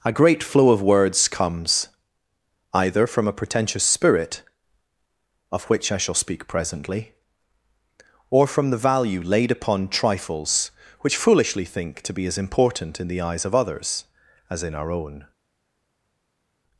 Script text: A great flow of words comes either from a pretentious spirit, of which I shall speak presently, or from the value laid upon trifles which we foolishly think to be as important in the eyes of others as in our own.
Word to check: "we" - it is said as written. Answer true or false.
false